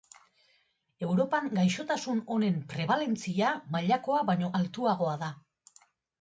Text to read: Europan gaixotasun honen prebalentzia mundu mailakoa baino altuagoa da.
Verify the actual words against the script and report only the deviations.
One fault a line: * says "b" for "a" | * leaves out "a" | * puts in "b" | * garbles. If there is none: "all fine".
* leaves out "mundu"